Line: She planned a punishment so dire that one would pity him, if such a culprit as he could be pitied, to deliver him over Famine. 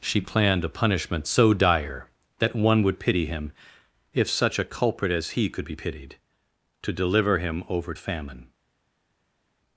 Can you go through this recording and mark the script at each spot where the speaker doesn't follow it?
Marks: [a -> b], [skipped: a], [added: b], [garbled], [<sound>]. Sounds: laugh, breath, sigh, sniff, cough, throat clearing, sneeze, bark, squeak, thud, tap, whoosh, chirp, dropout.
She planned a punishment so dire that one would pity him, if such a culprit as he could be pitied, to deliver him over Famine.